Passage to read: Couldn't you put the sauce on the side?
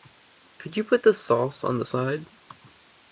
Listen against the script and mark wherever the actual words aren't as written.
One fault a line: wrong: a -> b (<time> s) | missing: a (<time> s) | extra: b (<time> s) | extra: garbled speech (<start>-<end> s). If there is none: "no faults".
wrong: Couldn't -> Could (0.6 s)